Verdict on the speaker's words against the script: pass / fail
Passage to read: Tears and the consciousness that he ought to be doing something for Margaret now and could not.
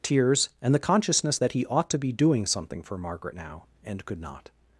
pass